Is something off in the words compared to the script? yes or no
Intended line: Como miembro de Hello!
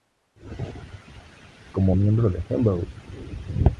no